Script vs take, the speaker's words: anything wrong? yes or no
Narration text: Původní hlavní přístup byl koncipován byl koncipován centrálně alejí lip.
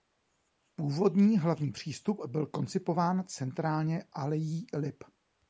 yes